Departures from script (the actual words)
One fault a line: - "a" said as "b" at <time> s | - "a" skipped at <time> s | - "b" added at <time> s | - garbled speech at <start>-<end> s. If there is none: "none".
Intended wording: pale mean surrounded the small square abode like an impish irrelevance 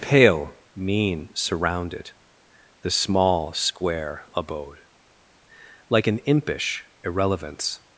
none